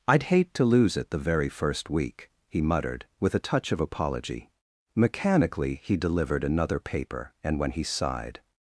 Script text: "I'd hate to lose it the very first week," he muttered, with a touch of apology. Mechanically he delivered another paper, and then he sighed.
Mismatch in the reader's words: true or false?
true